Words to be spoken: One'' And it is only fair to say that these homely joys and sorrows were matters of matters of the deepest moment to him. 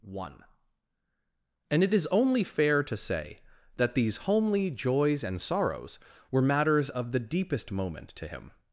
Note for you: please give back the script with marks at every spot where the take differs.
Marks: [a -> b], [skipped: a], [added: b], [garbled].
One'' And it is only fair to say that these homely joys and sorrows were matters of [skipped: matters of] the deepest moment to him.